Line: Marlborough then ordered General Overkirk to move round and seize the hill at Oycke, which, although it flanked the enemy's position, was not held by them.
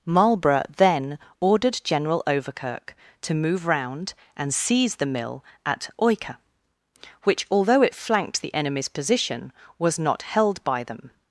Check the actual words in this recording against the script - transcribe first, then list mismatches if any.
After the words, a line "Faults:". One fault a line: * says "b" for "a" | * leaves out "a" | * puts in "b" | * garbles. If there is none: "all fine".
Marlborough then ordered General Overkirk to move round and seize the mill at Oycke, which, although it flanked the enemy's position, was not held by them.
Faults:
* says "mill" for "hill"